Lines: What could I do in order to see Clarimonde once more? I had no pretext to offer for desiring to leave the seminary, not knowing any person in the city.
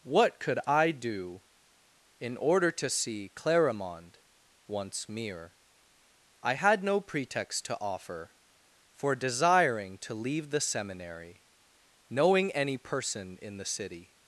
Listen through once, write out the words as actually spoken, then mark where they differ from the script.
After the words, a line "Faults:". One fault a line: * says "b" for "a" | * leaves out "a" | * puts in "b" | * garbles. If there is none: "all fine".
What could I do in order to see Clarimonde once mere? I had no pretext to offer for desiring to leave the seminary, knowing any person in the city.
Faults:
* says "mere" for "more"
* leaves out "not"